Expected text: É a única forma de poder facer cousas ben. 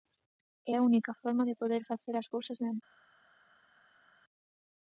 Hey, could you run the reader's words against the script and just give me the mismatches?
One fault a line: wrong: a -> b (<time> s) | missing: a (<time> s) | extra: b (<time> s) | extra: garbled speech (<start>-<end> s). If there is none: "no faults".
extra: as (2.2 s)